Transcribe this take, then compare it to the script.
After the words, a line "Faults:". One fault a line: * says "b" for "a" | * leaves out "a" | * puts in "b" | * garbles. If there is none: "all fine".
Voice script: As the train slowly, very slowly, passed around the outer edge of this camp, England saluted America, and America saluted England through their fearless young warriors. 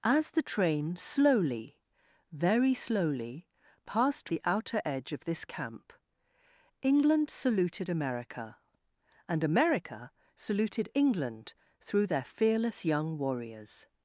As the train slowly, very slowly, passed the outer edge of this camp, England saluted America, and America saluted England through their fearless young warriors.
Faults:
* leaves out "around"